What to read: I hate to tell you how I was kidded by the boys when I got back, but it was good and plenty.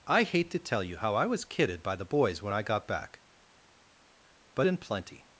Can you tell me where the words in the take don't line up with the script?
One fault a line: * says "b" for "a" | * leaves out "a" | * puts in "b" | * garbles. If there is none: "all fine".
* leaves out "it was good"